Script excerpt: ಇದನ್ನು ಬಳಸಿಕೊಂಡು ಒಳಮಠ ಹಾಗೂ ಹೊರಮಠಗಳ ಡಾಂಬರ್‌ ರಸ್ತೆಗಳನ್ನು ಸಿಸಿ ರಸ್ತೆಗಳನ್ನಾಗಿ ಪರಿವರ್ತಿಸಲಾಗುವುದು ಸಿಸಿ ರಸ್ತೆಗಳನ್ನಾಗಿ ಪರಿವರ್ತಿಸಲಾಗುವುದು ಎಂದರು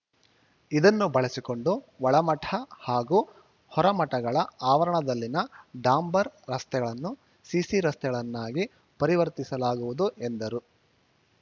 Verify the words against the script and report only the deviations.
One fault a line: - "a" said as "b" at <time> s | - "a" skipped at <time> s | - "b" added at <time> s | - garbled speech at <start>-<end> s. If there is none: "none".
- "ಆವರಣದಲ್ಲಿನ" added at 4.7 s
- "ಸಿಸಿ ರಸ್ತೆಗಳನ್ನಾಗಿ ಪರಿವರ್ತಿಸಲಾಗುವುದು" skipped at 10.1 s